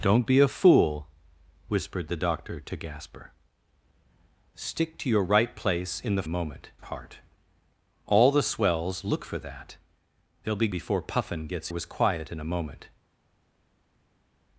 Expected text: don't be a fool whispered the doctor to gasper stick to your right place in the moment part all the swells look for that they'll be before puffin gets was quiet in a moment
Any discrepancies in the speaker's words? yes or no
no